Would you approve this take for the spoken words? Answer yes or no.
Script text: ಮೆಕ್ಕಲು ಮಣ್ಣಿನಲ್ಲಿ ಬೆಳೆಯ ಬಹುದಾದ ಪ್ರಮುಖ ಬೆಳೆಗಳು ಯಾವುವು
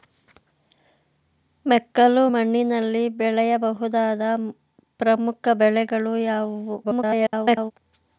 no